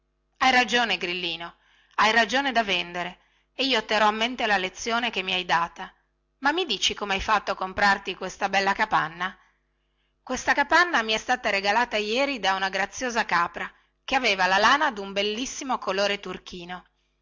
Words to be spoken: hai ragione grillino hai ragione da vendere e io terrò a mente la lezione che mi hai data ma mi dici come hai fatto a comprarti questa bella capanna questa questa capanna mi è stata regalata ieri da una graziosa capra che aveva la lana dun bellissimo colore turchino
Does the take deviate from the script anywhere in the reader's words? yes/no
yes